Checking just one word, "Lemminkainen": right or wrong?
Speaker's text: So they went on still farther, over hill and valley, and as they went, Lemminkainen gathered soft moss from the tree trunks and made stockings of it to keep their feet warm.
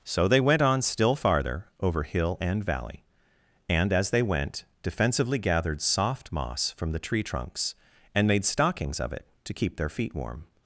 wrong